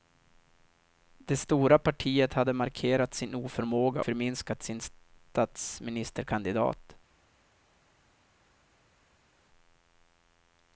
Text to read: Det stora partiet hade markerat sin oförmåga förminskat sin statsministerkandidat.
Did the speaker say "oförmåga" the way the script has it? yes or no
yes